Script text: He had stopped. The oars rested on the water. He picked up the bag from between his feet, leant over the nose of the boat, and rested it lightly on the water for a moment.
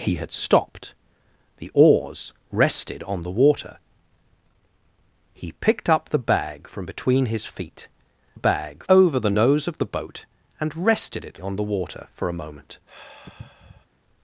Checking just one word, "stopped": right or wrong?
right